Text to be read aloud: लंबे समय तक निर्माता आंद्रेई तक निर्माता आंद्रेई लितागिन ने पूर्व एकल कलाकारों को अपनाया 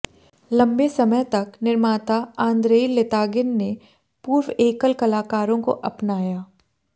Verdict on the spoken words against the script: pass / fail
fail